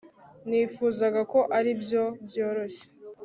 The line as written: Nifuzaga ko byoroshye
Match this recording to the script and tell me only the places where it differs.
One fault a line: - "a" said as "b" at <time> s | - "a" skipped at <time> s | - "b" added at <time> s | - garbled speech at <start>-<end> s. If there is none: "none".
- "aribyo" added at 1.6 s